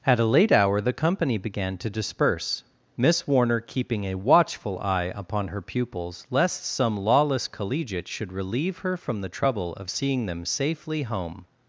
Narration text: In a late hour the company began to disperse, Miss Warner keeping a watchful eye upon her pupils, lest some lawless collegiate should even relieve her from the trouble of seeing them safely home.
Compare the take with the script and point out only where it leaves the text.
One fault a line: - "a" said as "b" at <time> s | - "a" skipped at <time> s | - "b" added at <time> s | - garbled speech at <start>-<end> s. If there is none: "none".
- "In" said as "At" at 0.1 s
- "even" skipped at 8.3 s